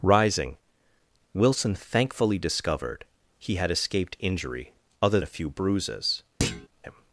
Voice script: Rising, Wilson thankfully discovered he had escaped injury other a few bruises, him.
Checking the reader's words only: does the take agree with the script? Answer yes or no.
yes